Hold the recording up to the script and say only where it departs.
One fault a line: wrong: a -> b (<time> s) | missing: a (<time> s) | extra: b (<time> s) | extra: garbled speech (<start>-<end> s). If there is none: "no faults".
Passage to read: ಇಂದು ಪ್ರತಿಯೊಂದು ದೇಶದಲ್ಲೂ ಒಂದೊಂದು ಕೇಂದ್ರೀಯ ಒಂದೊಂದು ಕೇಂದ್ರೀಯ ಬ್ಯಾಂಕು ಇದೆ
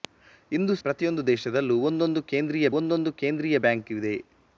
no faults